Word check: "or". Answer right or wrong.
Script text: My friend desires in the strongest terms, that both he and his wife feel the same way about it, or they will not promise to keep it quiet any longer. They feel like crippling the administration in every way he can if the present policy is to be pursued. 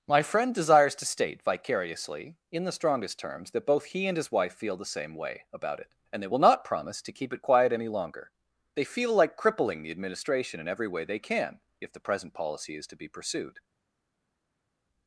wrong